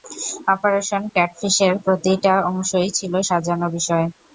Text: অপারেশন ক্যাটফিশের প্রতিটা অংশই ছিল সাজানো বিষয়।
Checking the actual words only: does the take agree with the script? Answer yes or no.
yes